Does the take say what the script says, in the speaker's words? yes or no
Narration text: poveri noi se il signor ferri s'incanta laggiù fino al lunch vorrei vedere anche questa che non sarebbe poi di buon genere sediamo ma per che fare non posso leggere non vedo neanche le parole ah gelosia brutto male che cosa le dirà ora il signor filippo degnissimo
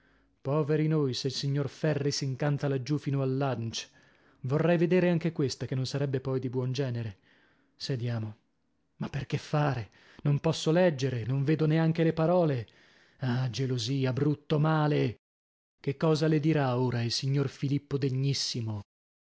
yes